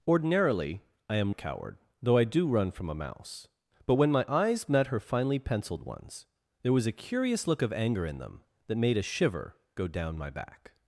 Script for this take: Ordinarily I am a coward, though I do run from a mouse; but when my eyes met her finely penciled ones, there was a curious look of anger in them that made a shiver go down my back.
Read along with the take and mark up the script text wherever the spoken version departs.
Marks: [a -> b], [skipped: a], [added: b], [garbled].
Ordinarily I am a coward, though I do run from a mouse; but when my eyes met her finely penciled ones, there was a curious look of anger in them that made a shiver go down my back.